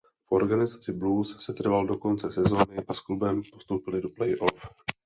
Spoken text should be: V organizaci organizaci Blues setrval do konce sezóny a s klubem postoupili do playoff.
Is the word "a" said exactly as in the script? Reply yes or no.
yes